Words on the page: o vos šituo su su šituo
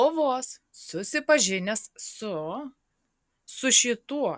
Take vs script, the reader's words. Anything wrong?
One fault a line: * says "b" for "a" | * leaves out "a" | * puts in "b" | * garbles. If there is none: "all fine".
* says "susipažinęs" for "šituo"